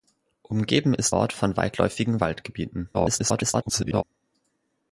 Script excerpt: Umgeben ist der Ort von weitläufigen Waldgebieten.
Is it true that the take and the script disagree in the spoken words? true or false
true